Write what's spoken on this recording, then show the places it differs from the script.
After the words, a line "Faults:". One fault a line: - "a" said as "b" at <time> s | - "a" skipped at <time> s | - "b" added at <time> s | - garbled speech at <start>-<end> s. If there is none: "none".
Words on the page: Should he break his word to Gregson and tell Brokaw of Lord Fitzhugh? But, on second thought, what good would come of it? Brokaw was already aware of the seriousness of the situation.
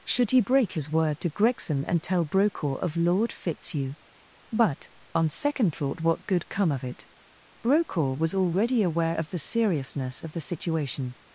Should he break his word to Gregson and tell Brokaw of Lord Fitzhugh? But, on second thought, what good come of it? Brokaw was already aware of the seriousness of the situation.
Faults:
- "would" skipped at 6.5 s